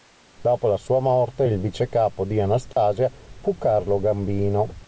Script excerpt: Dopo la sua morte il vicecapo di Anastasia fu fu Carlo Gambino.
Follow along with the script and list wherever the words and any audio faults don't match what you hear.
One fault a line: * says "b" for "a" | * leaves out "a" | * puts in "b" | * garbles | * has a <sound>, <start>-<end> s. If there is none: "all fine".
* has a dropout, 2.7-2.8 s
* leaves out "fu"